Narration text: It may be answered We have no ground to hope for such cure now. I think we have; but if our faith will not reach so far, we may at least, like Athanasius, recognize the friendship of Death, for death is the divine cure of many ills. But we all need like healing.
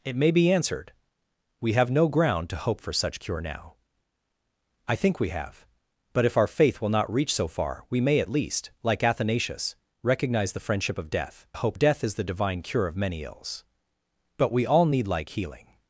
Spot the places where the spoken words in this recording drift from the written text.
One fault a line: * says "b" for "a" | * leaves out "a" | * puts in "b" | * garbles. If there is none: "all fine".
* says "hope" for "for"